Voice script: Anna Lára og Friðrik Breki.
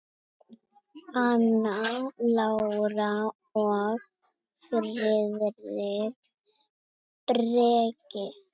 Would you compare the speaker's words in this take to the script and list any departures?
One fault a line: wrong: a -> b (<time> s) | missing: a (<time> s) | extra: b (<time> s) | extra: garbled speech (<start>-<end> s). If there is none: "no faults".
no faults